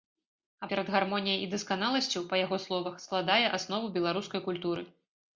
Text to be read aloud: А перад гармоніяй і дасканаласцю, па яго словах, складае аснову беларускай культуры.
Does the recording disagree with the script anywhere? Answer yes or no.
no